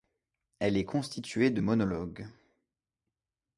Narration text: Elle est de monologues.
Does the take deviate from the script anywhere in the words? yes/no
yes